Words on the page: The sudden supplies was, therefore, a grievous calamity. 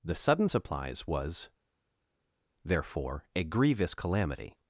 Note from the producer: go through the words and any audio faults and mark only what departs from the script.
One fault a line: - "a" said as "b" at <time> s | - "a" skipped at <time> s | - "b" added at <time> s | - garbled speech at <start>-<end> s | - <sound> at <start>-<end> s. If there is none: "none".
none